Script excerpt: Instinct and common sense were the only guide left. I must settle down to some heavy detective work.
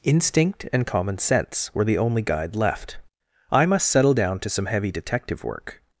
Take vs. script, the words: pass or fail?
pass